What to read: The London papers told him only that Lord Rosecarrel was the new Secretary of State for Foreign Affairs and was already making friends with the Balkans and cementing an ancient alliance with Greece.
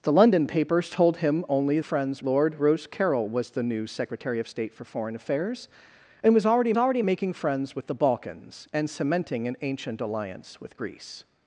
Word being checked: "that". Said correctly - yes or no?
no